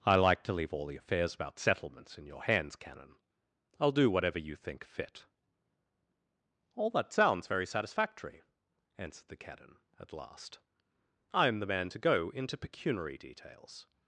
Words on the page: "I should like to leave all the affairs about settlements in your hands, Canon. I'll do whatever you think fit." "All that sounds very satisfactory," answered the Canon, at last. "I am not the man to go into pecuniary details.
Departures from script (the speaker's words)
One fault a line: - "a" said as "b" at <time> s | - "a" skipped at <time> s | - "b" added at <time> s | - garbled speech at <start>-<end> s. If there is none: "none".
- "should" skipped at 0.1 s
- "not" skipped at 11.6 s